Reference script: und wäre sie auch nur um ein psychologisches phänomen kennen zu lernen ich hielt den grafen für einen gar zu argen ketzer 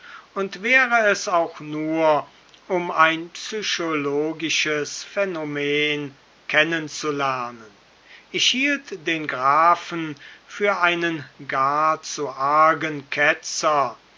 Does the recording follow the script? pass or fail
fail